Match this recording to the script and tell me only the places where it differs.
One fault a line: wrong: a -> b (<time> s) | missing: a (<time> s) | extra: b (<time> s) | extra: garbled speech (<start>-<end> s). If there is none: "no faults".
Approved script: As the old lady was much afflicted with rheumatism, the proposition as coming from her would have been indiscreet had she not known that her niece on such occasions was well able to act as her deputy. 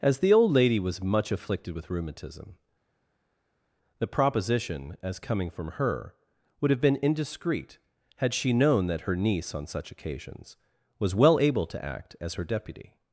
missing: not (8.5 s)